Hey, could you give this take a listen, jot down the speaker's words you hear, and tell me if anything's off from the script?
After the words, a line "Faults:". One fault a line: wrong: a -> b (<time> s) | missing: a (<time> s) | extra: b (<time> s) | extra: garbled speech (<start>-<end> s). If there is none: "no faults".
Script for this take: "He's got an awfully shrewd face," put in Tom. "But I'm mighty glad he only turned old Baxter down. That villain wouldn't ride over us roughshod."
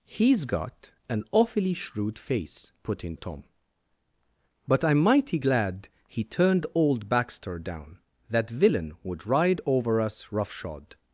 "He's got an awfully shrewd face," put in Tom. "But I'm mighty glad he turned old Baxter down. That villain would ride over us roughshod."
Faults:
missing: only (6.2 s)
wrong: wouldn't -> would (9.0 s)